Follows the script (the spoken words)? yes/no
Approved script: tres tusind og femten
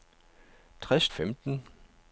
no